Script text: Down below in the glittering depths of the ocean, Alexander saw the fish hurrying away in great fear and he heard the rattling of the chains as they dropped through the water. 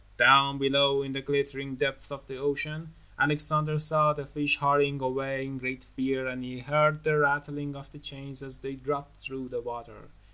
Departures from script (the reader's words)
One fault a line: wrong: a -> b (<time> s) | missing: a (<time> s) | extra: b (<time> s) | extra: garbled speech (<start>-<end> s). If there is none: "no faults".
no faults